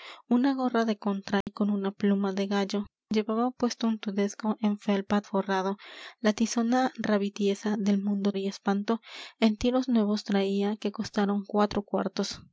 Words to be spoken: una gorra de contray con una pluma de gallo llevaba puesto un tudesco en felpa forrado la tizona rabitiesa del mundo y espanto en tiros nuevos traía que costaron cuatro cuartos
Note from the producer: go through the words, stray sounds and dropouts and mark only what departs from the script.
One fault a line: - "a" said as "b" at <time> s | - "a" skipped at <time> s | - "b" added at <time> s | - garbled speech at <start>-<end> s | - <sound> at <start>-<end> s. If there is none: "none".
- dropout at 1.4-1.5 s